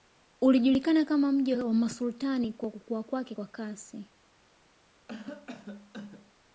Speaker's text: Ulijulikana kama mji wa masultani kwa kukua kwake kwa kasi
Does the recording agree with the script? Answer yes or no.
yes